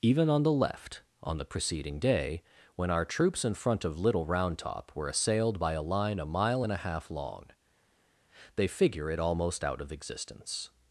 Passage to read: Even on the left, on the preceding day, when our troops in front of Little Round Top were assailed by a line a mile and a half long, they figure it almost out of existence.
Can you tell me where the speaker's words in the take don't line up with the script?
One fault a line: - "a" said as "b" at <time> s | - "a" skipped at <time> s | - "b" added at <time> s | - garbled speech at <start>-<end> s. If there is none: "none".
none